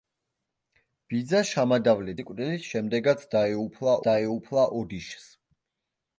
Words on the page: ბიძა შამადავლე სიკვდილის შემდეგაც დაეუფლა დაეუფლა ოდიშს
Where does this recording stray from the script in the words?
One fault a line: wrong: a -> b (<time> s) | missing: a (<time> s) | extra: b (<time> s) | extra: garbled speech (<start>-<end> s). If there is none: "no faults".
no faults